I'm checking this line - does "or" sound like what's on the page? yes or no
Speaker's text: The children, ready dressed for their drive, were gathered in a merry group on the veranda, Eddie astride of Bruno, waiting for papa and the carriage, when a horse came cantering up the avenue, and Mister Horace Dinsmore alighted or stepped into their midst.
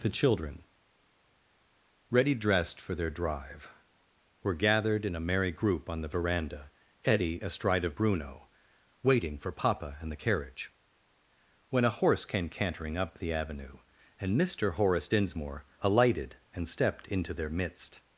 no